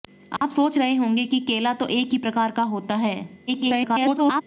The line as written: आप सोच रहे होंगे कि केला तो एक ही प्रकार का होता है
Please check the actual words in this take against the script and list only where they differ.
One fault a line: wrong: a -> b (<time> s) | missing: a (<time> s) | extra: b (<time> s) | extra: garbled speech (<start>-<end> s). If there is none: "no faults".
extra: garbled speech (3.5-4.4 s)